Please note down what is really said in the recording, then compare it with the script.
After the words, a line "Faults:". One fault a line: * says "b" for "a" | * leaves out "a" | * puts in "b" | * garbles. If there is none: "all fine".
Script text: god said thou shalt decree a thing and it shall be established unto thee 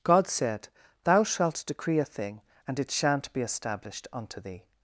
god said thou shalt decree a thing and it shan't be established unto thee
Faults:
* says "shan't" for "shall"